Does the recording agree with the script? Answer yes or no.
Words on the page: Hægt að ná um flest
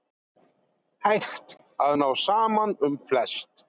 no